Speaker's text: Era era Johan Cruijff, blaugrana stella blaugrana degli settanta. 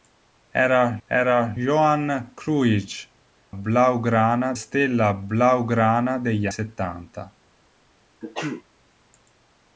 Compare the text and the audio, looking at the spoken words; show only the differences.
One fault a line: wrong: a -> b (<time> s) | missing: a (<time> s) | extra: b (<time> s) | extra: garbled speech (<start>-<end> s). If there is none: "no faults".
no faults